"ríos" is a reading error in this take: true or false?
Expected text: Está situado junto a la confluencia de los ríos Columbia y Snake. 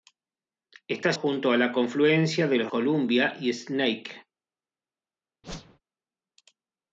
true